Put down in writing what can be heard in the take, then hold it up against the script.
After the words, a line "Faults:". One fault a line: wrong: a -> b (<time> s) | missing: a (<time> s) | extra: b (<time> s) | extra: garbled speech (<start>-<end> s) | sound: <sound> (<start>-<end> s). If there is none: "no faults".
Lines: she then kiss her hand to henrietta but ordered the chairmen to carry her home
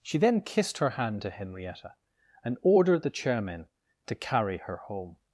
she then kissed her hand to henrietta and ordered the chairmen to carry her home
Faults:
wrong: kiss -> kissed (0.4 s)
wrong: but -> and (2.4 s)